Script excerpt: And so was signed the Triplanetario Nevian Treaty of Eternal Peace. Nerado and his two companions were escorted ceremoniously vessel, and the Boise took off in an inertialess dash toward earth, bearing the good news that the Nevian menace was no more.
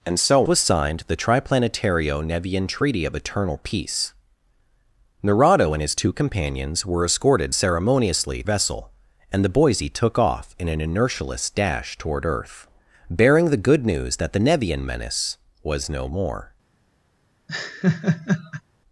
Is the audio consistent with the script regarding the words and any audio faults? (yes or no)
no